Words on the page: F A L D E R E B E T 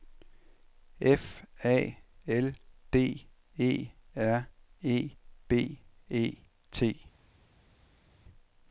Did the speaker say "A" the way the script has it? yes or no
yes